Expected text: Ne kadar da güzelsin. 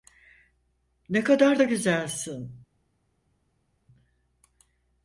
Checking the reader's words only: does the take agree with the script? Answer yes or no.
yes